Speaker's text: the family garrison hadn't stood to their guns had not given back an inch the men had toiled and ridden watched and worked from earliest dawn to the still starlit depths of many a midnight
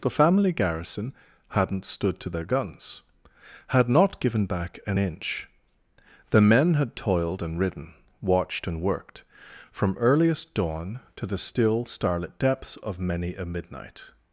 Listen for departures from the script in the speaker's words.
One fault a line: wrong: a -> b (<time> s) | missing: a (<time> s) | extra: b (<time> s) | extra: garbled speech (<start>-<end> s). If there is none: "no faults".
no faults